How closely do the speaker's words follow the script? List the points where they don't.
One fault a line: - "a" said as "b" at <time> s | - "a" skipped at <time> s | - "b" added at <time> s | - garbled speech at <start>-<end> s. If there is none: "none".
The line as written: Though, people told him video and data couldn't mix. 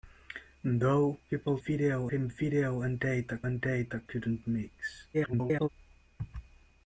- "told" said as "video" at 1.6 s
- "and data" added at 3.4 s
- garbled speech at 5.1-5.7 s